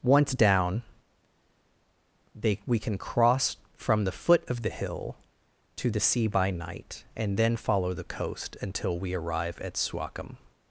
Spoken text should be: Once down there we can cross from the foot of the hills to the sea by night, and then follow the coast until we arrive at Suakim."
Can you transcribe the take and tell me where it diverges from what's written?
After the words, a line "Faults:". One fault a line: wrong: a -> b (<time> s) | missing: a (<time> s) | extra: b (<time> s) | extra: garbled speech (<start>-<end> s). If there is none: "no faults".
Once down they we can cross from the foot of the hill to the sea by night, and then follow the coast until we arrive at Suakim."
Faults:
wrong: there -> they (2.3 s)
wrong: hills -> hill (4.7 s)